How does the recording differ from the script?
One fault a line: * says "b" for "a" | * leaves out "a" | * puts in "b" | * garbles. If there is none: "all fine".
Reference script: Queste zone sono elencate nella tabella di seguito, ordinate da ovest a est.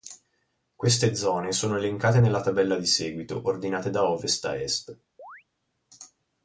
all fine